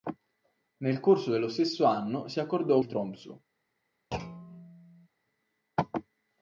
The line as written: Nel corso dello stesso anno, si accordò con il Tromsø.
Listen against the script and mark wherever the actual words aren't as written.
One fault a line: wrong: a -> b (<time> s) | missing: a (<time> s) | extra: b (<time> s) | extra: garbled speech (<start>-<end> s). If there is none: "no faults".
missing: con (2.8 s)